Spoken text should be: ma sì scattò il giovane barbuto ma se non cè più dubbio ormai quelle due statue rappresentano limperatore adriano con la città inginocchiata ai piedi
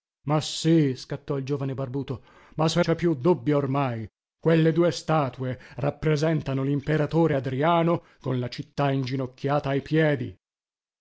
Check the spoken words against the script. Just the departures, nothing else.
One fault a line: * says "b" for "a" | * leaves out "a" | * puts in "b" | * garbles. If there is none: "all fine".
* leaves out "non"